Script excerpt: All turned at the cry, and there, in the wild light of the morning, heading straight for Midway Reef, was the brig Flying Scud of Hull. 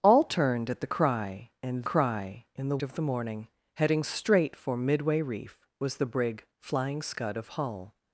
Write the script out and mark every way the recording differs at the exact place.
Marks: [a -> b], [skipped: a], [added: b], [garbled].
All turned at the cry, and [there, -> cry] in the [skipped: wild light] of the morning, heading straight for Midway Reef, was the brig Flying Scud of Hull.